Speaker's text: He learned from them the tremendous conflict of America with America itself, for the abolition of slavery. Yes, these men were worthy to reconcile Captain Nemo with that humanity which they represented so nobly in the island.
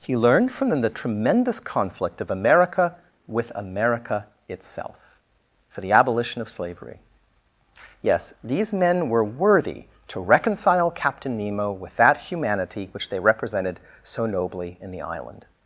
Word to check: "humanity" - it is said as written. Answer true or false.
true